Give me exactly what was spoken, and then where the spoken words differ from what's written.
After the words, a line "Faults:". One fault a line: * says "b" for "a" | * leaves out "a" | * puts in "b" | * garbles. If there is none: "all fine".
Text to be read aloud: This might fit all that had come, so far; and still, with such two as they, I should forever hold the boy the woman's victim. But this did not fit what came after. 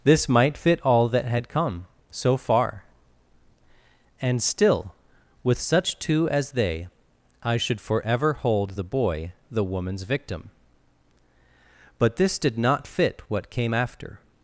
This might fit all that had come, so far; and still, with such two as they, I should forever hold the boy the woman's victim. But this did not fit what came after.
Faults:
all fine